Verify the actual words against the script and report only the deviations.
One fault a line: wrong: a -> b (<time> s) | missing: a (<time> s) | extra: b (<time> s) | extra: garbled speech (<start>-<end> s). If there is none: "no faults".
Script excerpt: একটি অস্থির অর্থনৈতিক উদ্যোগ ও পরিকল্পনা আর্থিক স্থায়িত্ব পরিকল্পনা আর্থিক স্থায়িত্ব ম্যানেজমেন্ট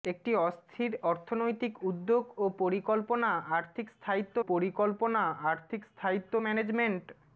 no faults